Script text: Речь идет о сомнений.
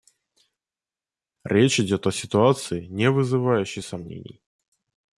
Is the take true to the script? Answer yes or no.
no